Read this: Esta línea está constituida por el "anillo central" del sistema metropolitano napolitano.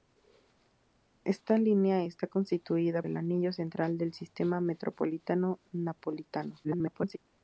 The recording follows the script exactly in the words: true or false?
false